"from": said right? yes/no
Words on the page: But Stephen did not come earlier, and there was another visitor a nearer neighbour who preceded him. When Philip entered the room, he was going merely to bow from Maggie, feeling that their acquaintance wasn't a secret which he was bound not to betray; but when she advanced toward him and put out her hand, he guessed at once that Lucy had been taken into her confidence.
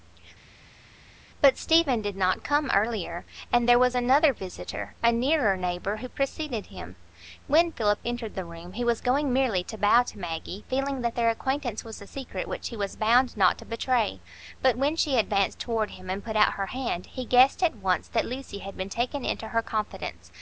no